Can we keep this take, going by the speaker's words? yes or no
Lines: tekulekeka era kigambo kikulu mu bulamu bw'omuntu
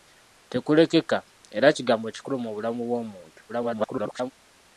no